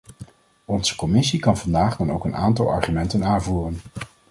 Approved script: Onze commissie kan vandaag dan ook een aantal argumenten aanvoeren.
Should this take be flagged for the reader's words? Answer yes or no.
no